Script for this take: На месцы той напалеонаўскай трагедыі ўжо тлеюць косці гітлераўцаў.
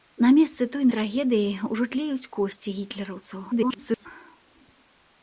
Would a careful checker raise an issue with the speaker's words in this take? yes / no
yes